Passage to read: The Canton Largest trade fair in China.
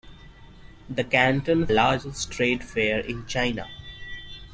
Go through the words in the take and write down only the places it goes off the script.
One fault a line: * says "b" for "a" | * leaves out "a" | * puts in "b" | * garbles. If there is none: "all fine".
all fine